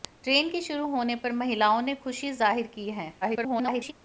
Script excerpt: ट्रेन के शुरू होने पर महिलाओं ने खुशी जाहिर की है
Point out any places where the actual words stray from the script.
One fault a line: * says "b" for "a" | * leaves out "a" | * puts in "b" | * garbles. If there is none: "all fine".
* garbles